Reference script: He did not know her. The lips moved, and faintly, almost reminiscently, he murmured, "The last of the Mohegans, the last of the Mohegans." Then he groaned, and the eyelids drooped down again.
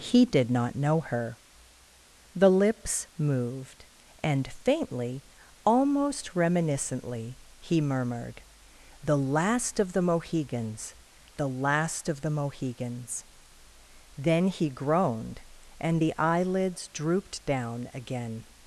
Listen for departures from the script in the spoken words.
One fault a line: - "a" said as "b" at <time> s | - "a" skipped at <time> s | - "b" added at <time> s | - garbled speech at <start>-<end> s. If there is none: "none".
none